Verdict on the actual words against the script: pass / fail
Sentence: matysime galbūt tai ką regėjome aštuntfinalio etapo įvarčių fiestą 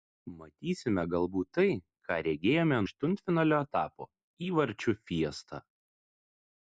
pass